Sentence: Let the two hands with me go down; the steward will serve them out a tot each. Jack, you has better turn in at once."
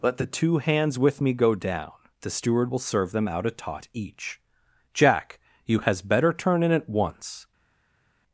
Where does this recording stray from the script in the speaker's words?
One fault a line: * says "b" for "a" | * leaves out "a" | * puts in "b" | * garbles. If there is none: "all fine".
all fine